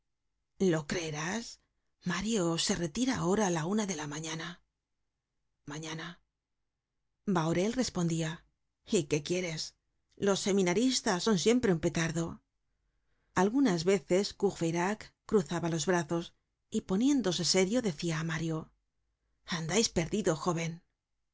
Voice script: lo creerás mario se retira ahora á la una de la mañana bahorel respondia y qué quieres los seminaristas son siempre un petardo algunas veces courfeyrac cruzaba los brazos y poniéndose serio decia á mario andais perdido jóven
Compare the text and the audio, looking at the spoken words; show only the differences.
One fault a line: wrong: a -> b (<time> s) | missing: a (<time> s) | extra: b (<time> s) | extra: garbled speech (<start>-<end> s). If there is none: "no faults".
extra: mañana (5.7 s)